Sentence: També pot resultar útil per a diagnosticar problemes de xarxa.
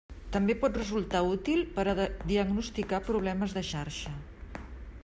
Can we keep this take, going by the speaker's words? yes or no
yes